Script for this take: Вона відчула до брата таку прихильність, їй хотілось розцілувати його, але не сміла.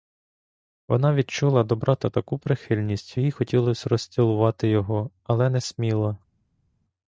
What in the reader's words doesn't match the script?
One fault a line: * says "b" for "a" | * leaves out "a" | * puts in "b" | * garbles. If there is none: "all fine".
all fine